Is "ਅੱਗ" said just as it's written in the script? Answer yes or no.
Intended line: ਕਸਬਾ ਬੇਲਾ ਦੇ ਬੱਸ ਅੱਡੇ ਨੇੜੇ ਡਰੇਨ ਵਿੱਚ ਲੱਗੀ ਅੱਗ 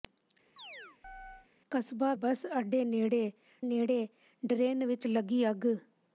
yes